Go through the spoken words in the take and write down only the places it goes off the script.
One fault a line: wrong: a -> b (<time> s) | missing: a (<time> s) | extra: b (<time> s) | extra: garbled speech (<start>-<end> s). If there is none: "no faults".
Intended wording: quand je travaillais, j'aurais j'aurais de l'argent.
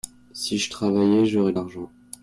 wrong: quand -> si (0.3 s)
missing: j'aurais (1.5 s)